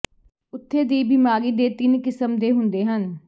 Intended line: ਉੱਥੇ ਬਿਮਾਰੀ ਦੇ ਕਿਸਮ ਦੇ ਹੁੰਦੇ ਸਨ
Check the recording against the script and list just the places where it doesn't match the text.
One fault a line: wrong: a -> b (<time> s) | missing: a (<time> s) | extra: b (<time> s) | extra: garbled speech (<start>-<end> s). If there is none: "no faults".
extra: ਦੀ (0.8 s)
extra: ਤਿੰਨ (1.7 s)
wrong: ਸਨ -> ਹਨ (2.9 s)